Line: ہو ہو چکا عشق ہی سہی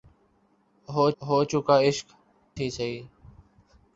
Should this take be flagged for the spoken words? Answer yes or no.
no